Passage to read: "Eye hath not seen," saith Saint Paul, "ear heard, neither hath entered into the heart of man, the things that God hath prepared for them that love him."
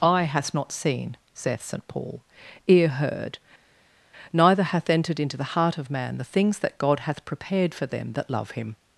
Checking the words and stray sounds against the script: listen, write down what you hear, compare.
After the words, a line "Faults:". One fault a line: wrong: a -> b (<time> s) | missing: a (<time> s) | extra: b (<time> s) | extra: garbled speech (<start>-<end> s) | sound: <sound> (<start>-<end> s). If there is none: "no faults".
"Eye hath not seen," saith Saint Paul, "ear heard, neither hath entered into the heart of man, the things that God hath prepared for them that love him."
Faults:
no faults